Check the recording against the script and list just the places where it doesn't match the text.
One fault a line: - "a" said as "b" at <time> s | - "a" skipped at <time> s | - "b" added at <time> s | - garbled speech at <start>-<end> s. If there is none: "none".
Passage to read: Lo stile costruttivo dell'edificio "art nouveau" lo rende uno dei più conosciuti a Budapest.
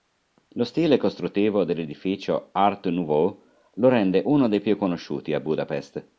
none